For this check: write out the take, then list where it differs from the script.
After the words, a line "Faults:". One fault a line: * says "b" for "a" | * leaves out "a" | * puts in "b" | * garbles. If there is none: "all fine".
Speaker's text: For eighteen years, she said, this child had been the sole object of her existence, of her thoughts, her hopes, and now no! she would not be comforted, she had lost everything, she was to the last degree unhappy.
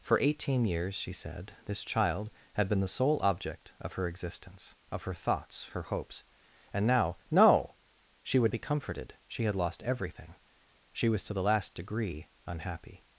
For eighteen years, she said, this child had been the sole object of her existence, of her thoughts, her hopes, and now no! she would be comforted, she had lost everything, she was to the last degree unhappy.
Faults:
* leaves out "not"